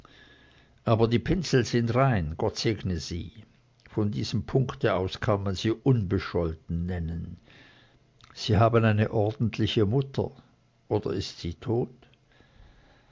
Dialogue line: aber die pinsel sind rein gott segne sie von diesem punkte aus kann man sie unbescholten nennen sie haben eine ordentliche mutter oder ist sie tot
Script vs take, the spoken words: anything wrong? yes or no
no